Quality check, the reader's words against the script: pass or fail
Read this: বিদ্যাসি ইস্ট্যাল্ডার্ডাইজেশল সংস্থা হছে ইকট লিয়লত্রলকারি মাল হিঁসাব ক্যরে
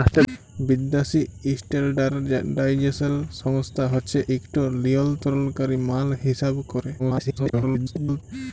fail